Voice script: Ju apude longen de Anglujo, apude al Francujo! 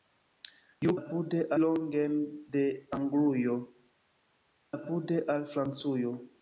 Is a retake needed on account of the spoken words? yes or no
no